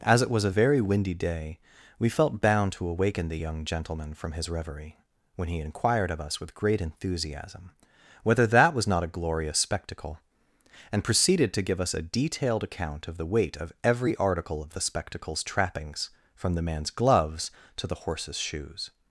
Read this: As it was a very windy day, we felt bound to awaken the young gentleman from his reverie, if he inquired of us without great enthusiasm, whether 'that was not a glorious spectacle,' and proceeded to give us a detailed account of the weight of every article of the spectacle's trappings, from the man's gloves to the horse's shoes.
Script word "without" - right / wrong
wrong